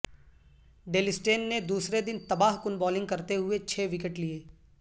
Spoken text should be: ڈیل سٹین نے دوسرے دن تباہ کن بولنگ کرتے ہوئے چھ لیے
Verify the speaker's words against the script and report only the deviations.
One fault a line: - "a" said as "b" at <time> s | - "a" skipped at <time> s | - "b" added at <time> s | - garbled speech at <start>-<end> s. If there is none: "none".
- "وکٹ" added at 3.9 s